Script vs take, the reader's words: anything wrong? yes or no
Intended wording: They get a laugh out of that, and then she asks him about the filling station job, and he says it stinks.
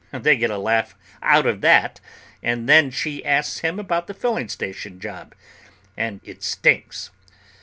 yes